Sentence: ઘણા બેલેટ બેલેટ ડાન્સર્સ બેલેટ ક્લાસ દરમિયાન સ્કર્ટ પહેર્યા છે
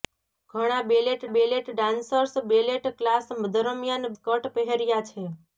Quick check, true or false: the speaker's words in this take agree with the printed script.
true